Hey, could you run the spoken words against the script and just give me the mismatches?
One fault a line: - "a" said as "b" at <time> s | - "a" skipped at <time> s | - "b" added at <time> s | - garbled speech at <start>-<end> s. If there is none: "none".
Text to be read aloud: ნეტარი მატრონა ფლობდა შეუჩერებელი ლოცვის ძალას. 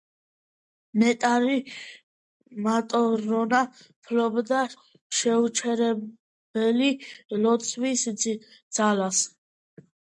none